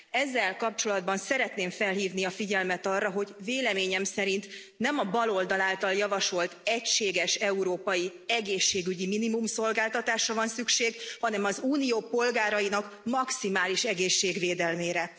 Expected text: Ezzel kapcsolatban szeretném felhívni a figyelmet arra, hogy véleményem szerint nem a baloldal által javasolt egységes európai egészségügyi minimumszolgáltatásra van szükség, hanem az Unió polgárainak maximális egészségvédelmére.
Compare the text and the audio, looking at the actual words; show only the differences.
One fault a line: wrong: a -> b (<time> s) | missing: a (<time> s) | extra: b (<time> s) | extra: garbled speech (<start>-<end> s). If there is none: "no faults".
no faults